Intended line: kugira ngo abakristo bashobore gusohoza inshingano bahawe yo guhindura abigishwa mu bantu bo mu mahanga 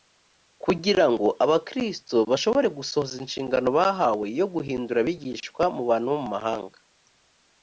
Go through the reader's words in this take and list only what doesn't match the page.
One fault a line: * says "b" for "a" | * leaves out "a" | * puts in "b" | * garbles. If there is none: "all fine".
all fine